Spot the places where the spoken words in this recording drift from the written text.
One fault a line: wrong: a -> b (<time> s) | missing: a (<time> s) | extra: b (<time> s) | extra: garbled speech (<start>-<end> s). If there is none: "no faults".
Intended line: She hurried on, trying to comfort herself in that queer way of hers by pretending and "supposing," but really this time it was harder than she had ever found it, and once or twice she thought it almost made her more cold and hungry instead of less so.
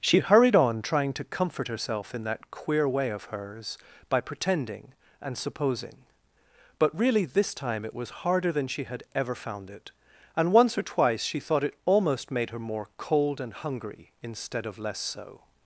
no faults